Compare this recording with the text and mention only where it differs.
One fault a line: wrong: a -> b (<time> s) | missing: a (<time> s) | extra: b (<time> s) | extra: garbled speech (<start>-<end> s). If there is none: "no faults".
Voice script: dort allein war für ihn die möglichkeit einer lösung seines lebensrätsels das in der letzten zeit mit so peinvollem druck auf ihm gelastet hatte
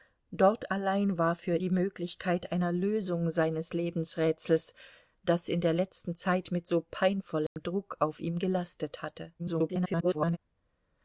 missing: ihn (1.6 s)
extra: garbled speech (9.4-10.4 s)